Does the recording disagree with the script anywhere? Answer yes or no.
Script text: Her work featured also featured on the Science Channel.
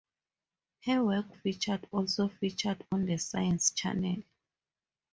no